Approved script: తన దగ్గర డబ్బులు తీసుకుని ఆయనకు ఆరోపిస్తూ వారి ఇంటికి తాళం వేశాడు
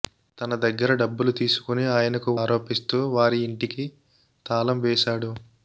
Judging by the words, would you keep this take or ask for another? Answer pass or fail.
pass